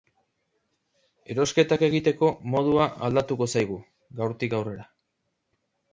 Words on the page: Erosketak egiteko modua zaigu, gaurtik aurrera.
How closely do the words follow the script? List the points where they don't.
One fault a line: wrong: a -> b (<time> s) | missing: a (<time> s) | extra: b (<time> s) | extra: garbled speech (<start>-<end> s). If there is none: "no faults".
extra: aldatuko (3.1 s)